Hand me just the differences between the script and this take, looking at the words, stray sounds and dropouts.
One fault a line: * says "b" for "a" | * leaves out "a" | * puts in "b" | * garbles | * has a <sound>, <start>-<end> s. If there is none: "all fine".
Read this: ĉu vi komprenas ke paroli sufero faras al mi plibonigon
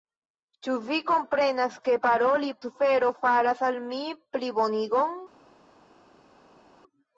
all fine